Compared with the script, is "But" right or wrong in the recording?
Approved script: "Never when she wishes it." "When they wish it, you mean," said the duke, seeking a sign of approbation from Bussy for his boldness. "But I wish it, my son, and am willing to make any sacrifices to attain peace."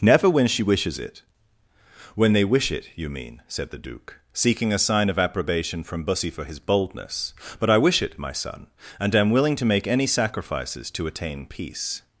right